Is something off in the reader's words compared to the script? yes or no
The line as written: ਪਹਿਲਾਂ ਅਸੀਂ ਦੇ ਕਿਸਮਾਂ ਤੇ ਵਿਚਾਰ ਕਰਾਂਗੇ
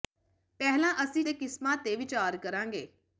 no